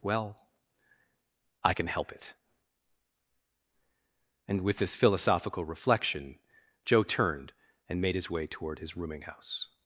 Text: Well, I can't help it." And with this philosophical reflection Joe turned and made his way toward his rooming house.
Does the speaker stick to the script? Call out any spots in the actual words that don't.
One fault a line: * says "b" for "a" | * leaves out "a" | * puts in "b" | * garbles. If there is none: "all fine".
* says "can" for "can't"